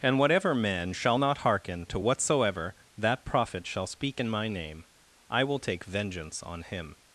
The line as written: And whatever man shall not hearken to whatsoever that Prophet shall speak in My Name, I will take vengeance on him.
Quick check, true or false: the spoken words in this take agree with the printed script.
true